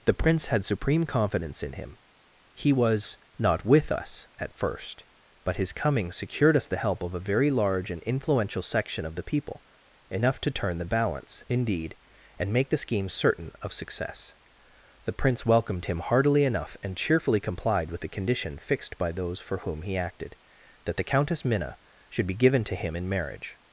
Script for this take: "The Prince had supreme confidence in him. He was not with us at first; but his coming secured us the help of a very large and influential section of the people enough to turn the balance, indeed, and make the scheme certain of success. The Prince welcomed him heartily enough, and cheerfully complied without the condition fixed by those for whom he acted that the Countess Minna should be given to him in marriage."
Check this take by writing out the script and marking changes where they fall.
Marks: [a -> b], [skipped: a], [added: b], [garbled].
"The Prince had supreme confidence in him. He was not with us at first; but his coming secured us the help of a very large and influential section of the people enough to turn the balance, indeed, and make the scheme certain of success. The Prince welcomed him heartily enough, and cheerfully complied [without -> with] the condition fixed by those for whom he acted that the Countess Minna should be given to him in marriage."